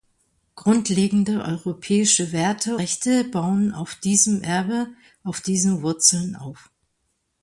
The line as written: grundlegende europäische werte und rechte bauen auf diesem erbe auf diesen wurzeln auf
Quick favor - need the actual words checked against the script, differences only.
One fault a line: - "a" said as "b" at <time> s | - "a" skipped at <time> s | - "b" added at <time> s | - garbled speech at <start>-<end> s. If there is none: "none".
- "und" skipped at 2.8 s